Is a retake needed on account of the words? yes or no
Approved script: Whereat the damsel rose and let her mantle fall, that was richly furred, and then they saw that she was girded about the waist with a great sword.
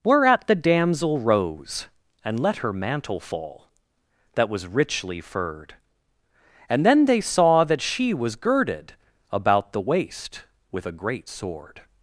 no